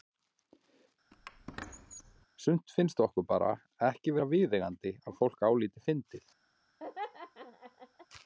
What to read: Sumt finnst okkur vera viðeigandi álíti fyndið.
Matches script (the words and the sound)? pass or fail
fail